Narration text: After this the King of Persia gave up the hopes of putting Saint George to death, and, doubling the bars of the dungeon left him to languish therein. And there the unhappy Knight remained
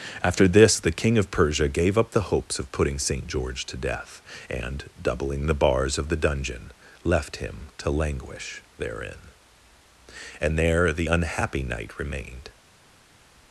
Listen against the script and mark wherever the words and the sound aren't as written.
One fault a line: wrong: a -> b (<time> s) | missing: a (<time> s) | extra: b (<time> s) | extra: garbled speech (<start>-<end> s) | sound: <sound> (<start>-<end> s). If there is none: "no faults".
no faults